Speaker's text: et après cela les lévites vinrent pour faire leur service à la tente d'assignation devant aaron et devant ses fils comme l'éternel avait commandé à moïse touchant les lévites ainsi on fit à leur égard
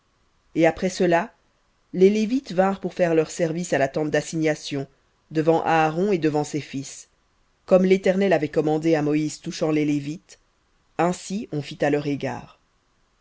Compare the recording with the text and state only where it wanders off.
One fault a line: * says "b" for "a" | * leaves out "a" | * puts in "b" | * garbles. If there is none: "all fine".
all fine